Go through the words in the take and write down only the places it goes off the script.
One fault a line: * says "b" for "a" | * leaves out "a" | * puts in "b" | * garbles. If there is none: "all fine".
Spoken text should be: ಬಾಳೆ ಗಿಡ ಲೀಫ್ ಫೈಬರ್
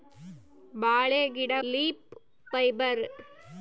all fine